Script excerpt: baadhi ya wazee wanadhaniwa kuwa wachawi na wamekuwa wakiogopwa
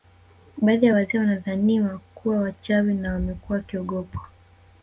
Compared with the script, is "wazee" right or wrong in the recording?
right